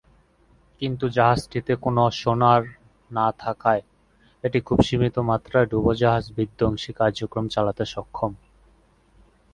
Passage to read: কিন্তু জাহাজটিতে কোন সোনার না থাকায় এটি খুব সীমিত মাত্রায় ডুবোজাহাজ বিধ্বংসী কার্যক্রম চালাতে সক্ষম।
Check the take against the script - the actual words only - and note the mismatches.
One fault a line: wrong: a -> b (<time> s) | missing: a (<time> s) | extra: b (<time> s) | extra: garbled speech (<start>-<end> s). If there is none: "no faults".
no faults